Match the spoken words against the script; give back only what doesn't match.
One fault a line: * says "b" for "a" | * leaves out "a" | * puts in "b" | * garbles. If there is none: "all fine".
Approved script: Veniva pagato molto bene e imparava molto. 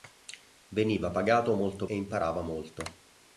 * leaves out "bene"